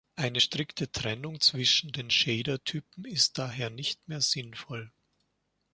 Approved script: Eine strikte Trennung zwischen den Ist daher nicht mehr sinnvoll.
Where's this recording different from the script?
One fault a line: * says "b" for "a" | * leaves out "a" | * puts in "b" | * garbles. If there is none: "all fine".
* puts in "Shader Typen"